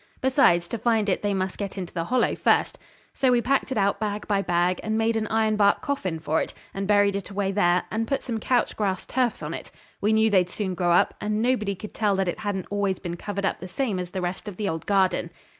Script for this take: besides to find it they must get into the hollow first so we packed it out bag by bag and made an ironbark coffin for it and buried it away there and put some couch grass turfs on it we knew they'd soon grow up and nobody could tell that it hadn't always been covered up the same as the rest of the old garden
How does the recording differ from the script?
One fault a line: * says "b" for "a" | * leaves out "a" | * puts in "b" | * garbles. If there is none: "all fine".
all fine